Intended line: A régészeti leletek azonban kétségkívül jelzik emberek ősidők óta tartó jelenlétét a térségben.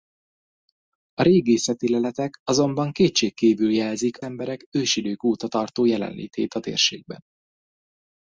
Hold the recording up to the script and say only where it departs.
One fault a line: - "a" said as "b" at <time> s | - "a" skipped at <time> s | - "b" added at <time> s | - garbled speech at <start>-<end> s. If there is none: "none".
none